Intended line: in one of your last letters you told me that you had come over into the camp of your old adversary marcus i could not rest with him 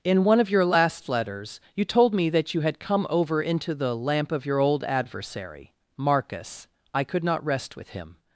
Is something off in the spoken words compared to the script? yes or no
yes